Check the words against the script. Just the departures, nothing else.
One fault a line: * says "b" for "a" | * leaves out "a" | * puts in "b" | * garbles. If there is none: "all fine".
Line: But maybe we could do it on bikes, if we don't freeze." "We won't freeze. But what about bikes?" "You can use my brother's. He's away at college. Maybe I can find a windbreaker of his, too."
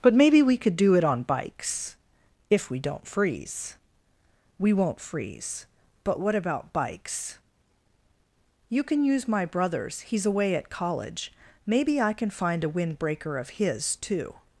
all fine